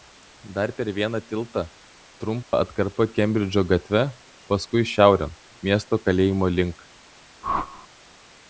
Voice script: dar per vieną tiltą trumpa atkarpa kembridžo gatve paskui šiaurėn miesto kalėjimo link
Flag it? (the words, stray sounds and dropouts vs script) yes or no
yes